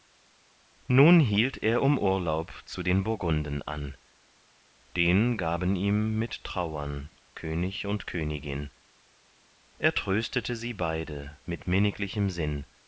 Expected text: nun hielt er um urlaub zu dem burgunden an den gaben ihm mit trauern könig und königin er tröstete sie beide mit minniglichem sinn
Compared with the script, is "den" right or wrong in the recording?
right